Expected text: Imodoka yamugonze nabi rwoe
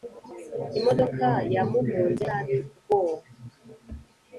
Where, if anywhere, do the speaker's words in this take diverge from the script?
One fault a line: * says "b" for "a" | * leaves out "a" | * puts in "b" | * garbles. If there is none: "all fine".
all fine